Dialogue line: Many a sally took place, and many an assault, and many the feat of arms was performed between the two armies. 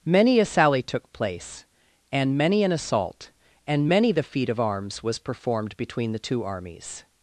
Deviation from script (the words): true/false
false